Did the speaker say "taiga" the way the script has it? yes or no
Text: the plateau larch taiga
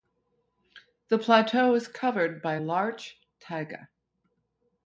yes